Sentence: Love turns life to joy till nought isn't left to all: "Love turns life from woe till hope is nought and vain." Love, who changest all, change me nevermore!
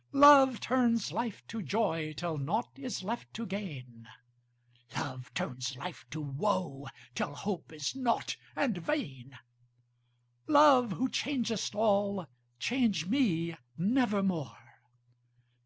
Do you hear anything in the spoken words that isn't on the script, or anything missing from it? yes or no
yes